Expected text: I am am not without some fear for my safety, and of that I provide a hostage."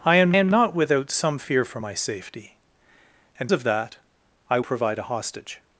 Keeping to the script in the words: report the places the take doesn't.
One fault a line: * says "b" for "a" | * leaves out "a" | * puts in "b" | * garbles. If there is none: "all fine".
all fine